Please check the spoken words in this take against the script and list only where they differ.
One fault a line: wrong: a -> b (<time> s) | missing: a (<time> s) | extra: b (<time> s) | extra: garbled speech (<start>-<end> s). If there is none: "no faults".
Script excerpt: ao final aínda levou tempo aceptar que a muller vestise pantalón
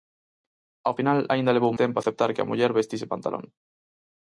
no faults